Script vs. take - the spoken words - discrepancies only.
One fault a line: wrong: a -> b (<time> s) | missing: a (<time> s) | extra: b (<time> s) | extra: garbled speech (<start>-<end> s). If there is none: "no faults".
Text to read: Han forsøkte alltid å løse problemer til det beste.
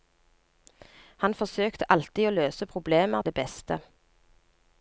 missing: til (3.3 s)